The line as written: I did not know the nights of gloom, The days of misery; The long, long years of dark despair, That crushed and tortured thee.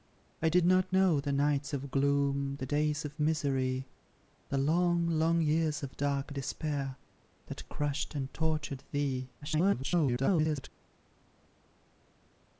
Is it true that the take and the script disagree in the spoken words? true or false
true